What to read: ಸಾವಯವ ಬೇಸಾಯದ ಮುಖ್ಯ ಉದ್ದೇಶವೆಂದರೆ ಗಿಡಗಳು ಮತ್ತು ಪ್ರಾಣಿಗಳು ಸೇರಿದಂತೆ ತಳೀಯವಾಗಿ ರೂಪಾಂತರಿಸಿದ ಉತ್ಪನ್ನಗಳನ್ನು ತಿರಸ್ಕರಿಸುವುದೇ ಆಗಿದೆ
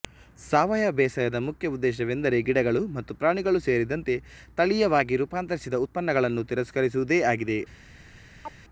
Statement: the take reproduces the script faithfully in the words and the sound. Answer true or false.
false